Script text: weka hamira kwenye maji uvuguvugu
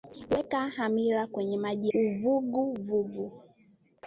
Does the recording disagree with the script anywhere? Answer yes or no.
no